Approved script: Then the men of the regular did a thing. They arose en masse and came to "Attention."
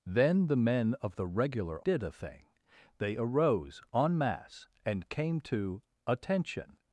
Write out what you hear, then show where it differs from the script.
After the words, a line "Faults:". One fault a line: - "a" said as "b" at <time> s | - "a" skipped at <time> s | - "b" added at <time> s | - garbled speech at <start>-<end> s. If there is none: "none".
Then the men of the regular did a thing. They arose en masse and came to "Attention."
Faults:
none